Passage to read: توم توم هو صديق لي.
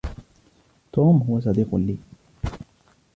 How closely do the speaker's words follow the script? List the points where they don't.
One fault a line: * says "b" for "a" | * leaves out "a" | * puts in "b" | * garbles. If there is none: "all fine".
* leaves out "توم"